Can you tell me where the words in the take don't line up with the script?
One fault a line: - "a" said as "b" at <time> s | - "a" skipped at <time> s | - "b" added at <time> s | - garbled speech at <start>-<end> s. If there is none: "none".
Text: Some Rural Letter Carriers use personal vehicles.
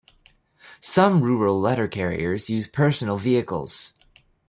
none